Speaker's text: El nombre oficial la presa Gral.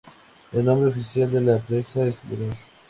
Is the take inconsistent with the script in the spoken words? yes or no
yes